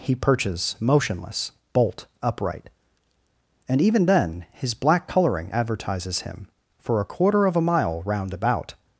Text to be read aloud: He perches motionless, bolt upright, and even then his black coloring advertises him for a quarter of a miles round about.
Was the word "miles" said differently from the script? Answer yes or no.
yes